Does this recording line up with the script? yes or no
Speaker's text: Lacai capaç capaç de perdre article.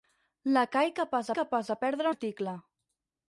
yes